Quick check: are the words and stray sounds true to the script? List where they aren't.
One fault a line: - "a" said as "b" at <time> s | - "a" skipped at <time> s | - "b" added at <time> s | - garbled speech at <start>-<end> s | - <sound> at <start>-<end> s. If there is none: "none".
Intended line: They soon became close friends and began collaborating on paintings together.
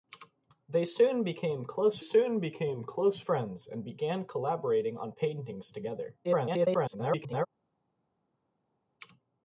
- "soon became close" added at 2.0 s
- garbled speech at 6.2-7.5 s